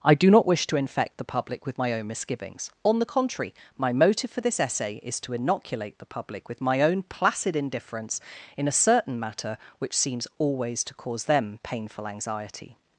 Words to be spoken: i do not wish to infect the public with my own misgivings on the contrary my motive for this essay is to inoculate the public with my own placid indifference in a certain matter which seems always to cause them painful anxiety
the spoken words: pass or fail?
pass